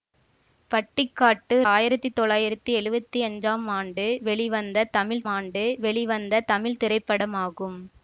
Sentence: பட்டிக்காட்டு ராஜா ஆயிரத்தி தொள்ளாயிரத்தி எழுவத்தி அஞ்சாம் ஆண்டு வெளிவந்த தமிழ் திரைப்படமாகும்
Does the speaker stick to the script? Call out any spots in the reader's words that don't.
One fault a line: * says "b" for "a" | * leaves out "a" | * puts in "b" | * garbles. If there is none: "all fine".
* leaves out "ராஜா"
* puts in "ஆண்டு வெளிவந்த தமிழ்"